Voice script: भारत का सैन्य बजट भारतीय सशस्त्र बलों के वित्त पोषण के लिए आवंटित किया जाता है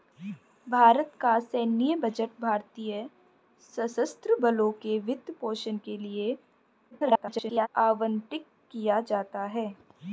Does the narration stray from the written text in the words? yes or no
yes